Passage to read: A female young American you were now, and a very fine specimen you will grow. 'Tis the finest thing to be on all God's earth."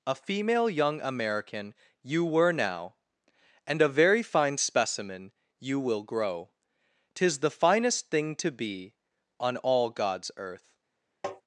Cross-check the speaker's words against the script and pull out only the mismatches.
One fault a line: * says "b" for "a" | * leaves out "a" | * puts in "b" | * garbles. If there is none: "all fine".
all fine